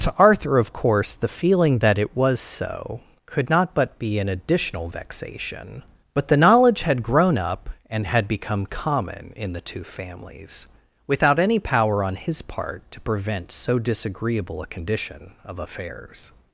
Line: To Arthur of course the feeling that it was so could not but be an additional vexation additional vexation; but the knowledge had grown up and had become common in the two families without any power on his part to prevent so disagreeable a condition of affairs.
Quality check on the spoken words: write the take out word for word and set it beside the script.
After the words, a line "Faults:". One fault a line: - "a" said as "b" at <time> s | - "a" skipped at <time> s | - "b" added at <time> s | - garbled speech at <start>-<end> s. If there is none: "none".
To Arthur of course the feeling that it was so could not but be an additional vexation; but the knowledge had grown up and had become common in the two families without any power on his part to prevent so disagreeable a condition of affairs.
Faults:
- "additional vexation" skipped at 5.8 s